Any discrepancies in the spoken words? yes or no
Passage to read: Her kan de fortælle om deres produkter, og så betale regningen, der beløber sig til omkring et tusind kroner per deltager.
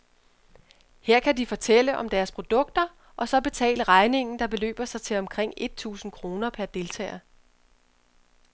no